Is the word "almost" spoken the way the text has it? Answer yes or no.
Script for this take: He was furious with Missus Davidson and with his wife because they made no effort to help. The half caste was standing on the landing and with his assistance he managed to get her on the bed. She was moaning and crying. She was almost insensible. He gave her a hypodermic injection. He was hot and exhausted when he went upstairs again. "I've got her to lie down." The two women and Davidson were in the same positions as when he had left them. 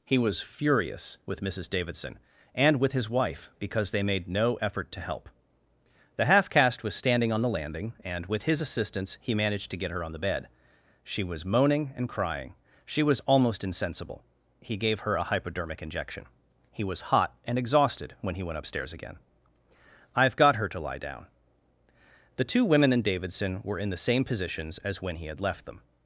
yes